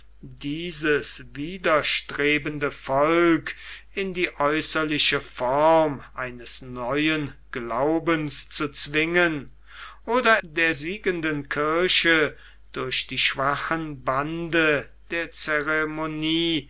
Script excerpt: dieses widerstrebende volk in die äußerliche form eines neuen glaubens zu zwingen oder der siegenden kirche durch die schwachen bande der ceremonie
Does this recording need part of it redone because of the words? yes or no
no